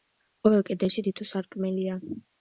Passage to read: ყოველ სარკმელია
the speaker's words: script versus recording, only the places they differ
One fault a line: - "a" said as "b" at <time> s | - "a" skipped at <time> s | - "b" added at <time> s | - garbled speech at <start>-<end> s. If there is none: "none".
- "კედელში თითო" added at 0.7 s